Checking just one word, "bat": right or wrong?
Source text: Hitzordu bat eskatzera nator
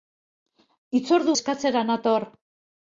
wrong